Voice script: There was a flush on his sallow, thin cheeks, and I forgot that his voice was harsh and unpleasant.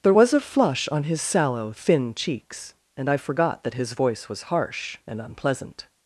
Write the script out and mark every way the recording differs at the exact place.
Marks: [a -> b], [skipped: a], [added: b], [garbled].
There was a flush on his sallow, thin cheeks, and I forgot that his voice was harsh and unpleasant.